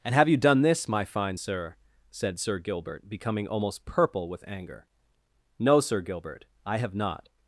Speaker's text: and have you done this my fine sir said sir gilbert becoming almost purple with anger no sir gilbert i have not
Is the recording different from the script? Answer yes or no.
no